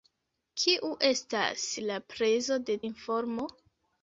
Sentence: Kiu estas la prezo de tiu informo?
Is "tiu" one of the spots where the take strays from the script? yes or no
yes